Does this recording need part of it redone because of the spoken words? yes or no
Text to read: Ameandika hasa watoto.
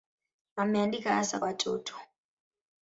no